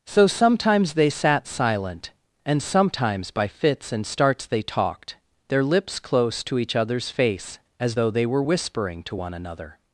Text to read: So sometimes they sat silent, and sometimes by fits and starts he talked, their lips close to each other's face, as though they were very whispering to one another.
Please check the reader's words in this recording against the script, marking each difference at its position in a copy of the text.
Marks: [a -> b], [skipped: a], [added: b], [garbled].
So sometimes they sat silent, and sometimes by fits and starts [he -> they] talked, their lips close to each other's face, as though they were [skipped: very] whispering to one another.